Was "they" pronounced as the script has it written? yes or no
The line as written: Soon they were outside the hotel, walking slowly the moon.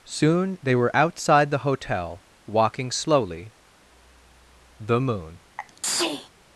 yes